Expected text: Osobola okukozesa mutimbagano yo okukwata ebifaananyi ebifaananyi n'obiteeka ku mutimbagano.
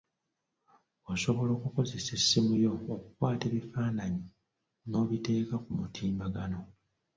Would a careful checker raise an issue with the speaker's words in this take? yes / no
yes